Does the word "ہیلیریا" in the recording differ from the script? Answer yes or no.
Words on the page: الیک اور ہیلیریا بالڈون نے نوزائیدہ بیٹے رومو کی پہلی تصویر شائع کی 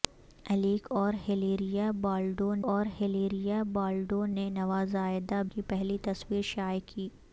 no